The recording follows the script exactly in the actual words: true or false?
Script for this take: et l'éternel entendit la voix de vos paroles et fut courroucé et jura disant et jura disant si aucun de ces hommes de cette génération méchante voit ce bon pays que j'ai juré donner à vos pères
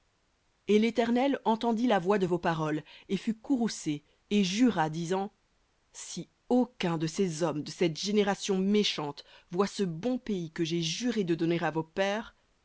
false